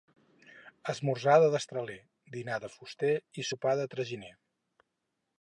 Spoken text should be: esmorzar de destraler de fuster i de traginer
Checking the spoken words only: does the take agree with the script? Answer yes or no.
no